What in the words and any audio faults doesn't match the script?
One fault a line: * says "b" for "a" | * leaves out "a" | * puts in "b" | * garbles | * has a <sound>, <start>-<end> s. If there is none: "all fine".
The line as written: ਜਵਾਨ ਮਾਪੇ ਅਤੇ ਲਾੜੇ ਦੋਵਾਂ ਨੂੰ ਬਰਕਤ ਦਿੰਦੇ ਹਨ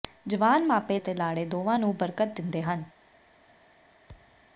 * has a thud, 4.1-4.5 s